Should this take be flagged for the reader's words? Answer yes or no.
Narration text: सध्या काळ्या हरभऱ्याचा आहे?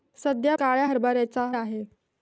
no